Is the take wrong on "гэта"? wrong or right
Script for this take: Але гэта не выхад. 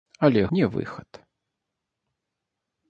wrong